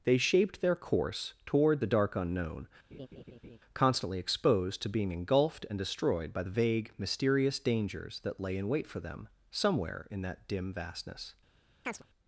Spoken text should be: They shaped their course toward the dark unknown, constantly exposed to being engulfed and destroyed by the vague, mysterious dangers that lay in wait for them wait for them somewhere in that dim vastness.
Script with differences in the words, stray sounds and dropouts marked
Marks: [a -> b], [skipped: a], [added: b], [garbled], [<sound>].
They shaped their course toward the dark unknown, [laugh] constantly exposed to being engulfed and destroyed by the vague, mysterious dangers that lay in wait for them [skipped: wait for them] somewhere in that dim vastness. [chirp]